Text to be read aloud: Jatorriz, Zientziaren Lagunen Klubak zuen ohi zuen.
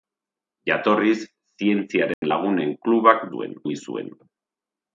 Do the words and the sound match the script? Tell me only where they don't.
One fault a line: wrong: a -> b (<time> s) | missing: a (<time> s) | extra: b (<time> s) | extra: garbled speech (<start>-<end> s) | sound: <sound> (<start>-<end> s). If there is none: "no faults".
sound: dropout (2.1-2.2 s)